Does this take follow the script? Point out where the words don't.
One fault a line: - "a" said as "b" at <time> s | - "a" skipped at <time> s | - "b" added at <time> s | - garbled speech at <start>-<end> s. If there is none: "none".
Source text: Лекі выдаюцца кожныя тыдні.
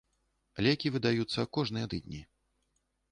none